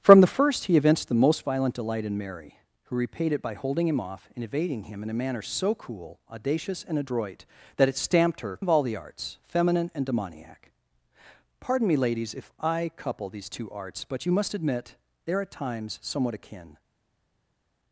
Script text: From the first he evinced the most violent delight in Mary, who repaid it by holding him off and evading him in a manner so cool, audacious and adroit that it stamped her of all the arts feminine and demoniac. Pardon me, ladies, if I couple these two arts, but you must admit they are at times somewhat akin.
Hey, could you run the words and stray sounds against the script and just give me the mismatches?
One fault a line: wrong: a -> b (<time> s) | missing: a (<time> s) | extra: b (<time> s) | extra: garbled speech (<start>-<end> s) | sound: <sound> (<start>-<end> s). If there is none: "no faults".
no faults